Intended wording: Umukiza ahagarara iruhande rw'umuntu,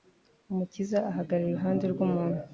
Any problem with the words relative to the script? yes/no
no